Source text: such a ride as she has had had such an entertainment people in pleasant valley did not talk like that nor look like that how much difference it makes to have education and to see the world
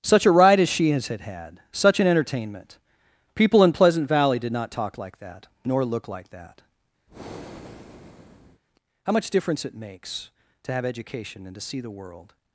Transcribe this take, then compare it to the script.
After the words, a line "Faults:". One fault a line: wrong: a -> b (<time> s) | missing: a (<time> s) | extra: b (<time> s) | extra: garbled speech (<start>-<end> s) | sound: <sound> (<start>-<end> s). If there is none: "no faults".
such a ride as she has had had such an entertainment people in pleasant valley did not talk like that nor look like that how much difference it makes to have education and to see the world
Faults:
sound: breath (7.1-8.6 s)